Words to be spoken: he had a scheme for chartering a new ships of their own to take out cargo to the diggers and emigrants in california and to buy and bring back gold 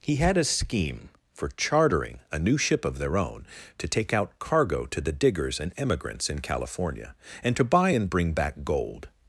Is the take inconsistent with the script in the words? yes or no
yes